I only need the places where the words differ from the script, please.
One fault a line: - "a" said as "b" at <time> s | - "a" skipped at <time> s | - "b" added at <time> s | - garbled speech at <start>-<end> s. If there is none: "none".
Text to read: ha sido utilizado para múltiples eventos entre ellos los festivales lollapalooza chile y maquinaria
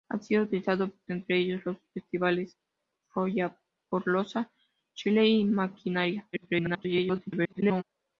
- "para múltiples eventos" skipped at 0.9 s
- garbled speech at 6.3-7.8 s